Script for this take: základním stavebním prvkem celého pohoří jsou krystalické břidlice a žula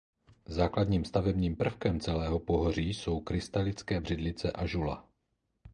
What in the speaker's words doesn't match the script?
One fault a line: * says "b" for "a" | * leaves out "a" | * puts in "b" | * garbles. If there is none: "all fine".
all fine